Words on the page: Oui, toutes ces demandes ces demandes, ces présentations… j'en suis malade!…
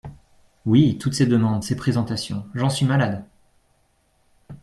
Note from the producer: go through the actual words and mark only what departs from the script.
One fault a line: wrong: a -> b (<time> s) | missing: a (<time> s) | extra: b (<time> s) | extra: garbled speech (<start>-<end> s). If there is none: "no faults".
missing: demandes ces (1.8 s)